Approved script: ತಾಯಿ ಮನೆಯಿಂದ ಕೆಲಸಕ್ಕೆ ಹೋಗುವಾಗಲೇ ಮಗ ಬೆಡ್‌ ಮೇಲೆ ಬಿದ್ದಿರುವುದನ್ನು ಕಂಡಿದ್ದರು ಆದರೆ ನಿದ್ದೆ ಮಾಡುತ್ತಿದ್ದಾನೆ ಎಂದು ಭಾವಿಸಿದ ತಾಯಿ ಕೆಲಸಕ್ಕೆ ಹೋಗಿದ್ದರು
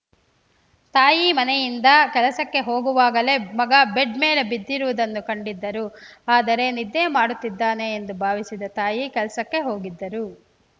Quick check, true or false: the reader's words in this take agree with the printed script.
true